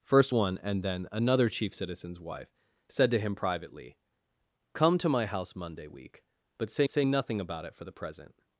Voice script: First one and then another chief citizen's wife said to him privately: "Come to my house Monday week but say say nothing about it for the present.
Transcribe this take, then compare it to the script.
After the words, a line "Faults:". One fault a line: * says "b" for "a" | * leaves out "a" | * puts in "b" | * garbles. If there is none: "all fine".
First one and then another chief citizen's wife said to him privately: "Come to my house Monday week but say say nothing about it for the present.
Faults:
all fine